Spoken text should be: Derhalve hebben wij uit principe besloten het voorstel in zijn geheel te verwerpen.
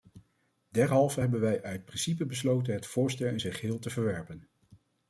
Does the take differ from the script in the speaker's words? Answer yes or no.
no